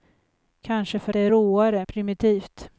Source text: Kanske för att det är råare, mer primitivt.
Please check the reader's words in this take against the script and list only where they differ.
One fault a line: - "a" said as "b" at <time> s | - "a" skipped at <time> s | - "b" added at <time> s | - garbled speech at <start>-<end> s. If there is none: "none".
- "att" skipped at 1.1 s
- "mer" skipped at 1.8 s